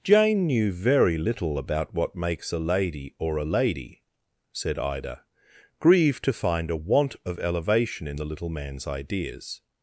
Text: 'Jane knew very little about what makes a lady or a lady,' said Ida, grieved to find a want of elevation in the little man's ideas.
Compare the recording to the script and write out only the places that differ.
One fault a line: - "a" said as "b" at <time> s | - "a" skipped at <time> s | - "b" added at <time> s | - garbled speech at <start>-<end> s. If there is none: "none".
none